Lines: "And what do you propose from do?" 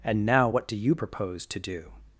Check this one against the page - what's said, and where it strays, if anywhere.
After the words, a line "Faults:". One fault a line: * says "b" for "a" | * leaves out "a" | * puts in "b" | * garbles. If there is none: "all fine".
"And now what do you propose to do?"
Faults:
* puts in "now"
* says "to" for "from"